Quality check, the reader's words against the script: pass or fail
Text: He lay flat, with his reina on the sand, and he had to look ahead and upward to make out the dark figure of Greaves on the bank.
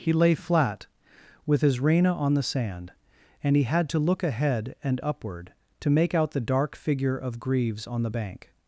pass